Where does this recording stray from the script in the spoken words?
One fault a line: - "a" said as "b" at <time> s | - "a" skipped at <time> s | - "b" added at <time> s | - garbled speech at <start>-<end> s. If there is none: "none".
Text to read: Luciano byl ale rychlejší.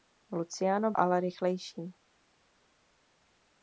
- "byl" skipped at 0.9 s